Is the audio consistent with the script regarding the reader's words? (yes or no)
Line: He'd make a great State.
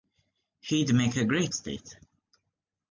yes